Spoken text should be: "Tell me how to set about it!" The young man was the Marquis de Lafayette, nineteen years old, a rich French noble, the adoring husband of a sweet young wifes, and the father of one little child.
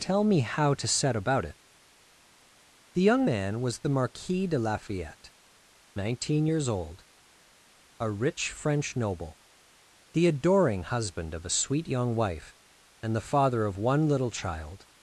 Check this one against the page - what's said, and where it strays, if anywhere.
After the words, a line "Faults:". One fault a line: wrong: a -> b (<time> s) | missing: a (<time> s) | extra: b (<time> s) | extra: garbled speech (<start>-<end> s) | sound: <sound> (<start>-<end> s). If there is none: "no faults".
"Tell me how to set about it!" The young man was the Marquis de Lafayette, nineteen years old, a rich French noble, the adoring husband of a sweet young wife, and the father of one little child.
Faults:
wrong: wifes -> wife (12.1 s)